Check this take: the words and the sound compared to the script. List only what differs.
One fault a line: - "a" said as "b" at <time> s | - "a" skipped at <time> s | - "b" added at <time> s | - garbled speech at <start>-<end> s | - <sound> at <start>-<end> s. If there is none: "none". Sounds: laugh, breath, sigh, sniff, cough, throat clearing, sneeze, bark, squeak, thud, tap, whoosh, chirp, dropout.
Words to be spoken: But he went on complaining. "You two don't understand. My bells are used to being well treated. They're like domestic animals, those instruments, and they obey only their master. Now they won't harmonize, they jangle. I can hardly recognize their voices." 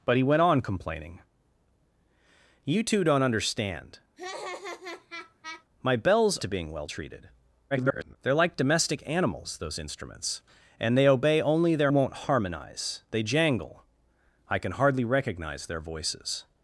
- laugh at 4.2-5.7 s
- "are used" skipped at 6.4 s
- garbled speech at 7.7-8.2 s
- "master Now they" skipped at 11.9 s